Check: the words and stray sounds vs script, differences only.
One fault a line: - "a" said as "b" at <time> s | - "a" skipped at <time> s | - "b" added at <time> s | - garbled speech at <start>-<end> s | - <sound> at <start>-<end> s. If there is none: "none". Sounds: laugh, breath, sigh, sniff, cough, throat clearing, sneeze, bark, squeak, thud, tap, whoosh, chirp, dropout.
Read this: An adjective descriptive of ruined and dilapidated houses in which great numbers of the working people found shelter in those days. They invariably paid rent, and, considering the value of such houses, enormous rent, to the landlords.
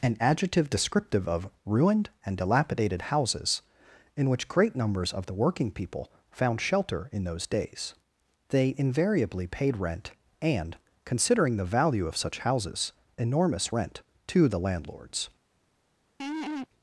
- laugh at 16.2-16.7 s